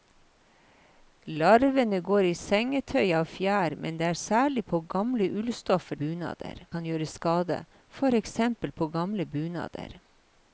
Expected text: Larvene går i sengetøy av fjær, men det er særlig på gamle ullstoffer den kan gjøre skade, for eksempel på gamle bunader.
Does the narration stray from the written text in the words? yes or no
yes